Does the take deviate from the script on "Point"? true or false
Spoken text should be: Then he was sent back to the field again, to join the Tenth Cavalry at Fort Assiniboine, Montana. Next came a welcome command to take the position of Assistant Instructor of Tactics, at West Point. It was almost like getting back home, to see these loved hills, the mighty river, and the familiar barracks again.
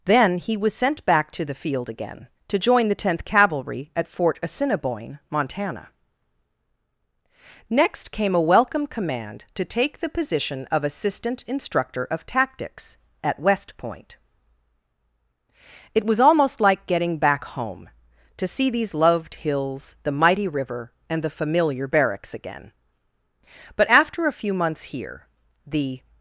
false